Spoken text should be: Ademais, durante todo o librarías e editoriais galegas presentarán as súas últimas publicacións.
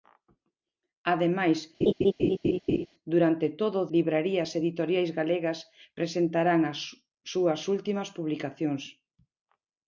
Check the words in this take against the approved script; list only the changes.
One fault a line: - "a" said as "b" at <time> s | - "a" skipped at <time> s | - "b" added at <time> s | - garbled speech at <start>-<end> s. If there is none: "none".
none